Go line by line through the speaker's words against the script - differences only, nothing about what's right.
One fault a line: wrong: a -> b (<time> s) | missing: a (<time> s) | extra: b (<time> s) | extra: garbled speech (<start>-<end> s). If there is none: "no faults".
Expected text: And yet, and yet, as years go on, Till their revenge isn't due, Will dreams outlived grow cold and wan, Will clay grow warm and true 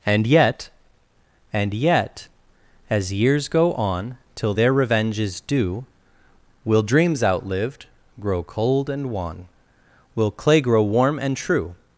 wrong: isn't -> is (5.2 s)